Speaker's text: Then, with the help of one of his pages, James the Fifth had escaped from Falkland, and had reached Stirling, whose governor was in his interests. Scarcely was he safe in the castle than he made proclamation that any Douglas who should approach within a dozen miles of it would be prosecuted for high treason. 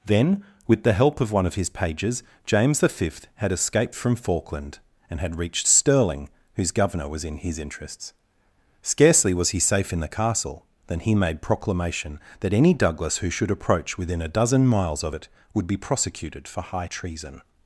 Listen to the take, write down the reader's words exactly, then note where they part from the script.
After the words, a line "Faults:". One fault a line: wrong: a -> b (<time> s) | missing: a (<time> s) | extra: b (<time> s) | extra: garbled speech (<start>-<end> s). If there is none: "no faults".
Then, with the help of one of his pages, James the Fifth had escaped from Falkland, and had reached Stirling, whose governor was in his interests. Scarcely was he safe in the castle than he made proclamation that any Douglas who should approach within a dozen miles of it would be prosecuted for high treason.
Faults:
no faults